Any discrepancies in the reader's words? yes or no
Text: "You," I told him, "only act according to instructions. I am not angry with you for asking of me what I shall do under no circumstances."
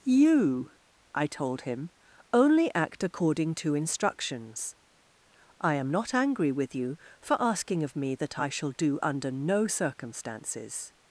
yes